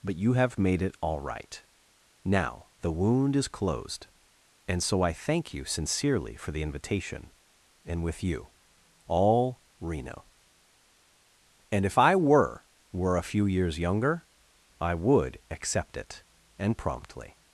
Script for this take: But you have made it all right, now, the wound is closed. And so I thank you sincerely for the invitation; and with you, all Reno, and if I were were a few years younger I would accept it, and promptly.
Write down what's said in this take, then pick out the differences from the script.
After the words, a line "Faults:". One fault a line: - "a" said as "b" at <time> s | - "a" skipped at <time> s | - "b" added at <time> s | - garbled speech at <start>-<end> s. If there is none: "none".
But you have made it all right, now, the wound is closed. And so I thank you sincerely for the invitation; and with you, all Reno, and if I were were a few years younger I would accept it, and promptly.
Faults:
none